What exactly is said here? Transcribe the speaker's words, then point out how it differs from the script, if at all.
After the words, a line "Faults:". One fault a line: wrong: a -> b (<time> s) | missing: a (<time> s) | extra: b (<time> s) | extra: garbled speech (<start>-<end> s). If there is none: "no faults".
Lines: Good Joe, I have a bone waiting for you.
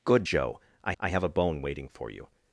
Good Joe, I I have a bone waiting for you.
Faults:
extra: I (1.0 s)